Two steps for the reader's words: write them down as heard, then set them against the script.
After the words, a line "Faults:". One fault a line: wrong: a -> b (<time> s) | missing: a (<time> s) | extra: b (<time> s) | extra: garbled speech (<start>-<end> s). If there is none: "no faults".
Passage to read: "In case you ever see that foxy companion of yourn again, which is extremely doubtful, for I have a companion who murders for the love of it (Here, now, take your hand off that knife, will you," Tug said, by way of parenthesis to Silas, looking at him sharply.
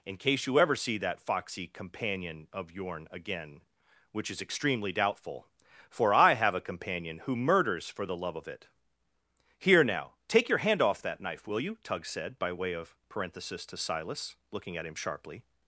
"In case you ever see that foxy companion of yourn again, which is extremely doubtful, for I have a companion who murders for the love of it (Here, now, take your hand off that knife, will you," Tug said, by way of parenthesis to Silas, looking at him sharply.
Faults:
no faults